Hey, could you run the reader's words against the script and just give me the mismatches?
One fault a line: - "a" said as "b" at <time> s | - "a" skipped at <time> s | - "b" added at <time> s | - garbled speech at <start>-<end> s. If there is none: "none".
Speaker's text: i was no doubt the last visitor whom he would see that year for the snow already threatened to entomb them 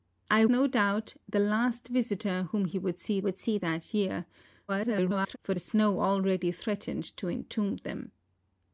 - "was" skipped at 0.5 s
- "would see" added at 3.2 s
- garbled speech at 4.7-5.4 s